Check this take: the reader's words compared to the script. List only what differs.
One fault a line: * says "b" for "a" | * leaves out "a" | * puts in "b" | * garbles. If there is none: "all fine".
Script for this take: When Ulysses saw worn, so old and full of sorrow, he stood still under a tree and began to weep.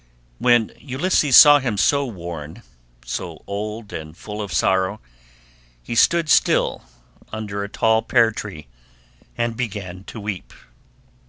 * puts in "him so"
* puts in "tall pear"